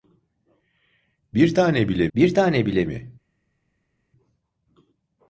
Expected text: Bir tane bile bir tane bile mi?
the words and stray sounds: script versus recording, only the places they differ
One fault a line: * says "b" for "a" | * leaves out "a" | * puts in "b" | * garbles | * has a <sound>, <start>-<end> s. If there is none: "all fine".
all fine